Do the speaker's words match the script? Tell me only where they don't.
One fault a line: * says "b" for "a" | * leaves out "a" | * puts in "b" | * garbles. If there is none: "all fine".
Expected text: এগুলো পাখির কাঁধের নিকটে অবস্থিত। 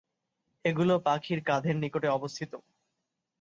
all fine